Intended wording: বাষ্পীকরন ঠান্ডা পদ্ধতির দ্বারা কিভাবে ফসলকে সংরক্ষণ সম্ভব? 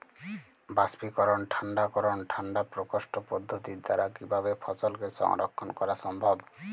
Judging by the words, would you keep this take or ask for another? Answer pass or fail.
fail